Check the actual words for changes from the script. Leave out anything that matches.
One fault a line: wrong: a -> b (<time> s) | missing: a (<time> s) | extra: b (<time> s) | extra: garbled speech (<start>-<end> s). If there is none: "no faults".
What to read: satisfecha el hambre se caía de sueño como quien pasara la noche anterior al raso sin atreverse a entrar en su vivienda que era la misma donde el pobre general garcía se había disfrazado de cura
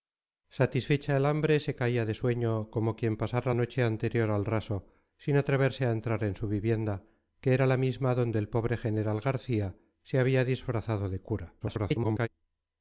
missing: la (3.5 s)
extra: garbled speech (11.6-12.3 s)